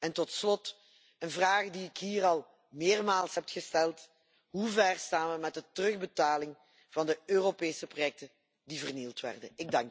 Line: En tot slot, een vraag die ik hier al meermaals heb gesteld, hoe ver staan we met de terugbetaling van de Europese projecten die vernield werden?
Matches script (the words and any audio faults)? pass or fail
pass